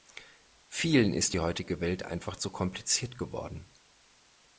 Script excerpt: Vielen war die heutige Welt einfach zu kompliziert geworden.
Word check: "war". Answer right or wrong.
wrong